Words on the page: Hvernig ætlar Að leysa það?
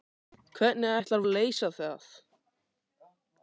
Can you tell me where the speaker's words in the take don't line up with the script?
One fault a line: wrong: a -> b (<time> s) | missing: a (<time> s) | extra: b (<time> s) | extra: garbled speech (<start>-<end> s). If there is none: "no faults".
no faults